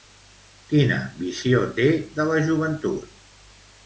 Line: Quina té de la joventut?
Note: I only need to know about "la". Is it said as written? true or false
true